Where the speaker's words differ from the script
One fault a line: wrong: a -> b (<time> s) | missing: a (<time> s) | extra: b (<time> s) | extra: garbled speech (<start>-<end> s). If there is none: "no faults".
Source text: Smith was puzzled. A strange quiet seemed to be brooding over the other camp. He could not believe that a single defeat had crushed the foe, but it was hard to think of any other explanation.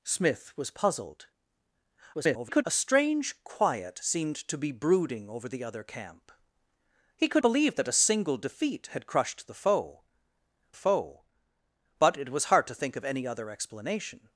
extra: garbled speech (2.1-2.6 s)
missing: not (7.4 s)
extra: foe (10.7 s)